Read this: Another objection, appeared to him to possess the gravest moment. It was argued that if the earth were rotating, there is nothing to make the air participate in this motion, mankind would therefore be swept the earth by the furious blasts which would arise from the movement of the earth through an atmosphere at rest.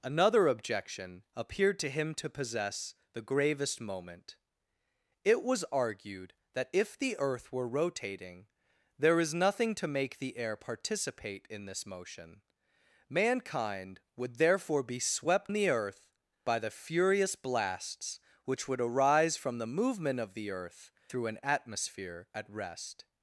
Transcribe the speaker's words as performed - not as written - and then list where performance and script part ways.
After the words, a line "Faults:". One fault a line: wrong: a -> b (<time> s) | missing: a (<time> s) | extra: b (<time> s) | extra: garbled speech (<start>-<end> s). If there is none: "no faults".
Another objection, appeared to him to possess the gravest moment. It was argued that if the earth were rotating, there is nothing to make the air participate in this motion, mankind would therefore be swept the earth by the furious blasts which would arise from the movement of the earth through an atmosphere at rest.
Faults:
no faults